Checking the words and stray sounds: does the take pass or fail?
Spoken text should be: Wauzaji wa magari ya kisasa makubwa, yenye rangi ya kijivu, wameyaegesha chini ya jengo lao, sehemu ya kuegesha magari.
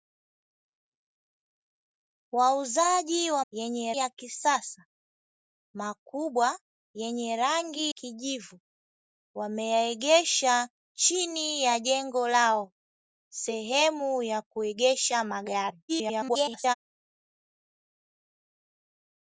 fail